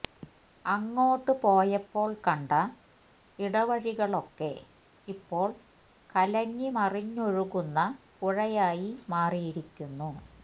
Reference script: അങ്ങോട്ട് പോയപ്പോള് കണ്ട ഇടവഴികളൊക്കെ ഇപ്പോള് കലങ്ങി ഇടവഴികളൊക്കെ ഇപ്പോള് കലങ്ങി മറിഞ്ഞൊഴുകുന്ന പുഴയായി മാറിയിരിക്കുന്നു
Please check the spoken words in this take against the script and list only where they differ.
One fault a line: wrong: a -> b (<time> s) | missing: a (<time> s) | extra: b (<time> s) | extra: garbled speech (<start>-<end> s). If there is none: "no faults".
missing: ഇടവഴികളൊക്കെ ഇപ്പോള് കലങ്ങി (6.7 s)